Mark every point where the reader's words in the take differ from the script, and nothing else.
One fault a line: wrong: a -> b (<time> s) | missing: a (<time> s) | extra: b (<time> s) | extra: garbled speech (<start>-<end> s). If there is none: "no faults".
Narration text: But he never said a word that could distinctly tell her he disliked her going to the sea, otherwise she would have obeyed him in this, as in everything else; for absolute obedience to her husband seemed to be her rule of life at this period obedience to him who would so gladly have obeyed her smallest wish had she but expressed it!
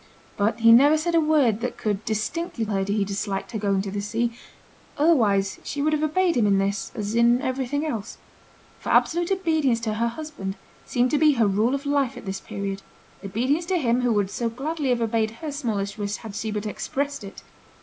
missing: tell (2.6 s)